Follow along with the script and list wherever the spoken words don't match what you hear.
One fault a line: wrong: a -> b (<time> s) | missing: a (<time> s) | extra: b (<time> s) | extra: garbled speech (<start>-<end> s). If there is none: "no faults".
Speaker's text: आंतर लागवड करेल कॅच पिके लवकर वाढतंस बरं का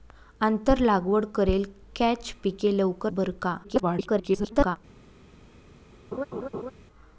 missing: वाढतंस (3.1 s)
extra: garbled speech (3.6-4.8 s)